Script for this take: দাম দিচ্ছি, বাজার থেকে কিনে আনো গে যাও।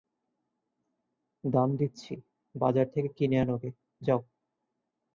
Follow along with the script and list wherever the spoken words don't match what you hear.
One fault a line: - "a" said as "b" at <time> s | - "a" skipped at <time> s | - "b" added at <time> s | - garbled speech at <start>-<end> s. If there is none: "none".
none